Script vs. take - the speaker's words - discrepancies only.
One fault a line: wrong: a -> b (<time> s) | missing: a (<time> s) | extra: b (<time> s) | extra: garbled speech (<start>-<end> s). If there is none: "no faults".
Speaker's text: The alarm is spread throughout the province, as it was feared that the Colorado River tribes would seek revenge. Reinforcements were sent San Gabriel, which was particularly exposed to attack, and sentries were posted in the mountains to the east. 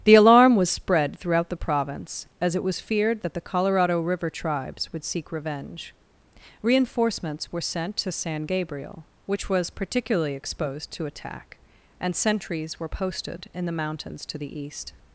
wrong: is -> was (0.6 s)
extra: to (8.0 s)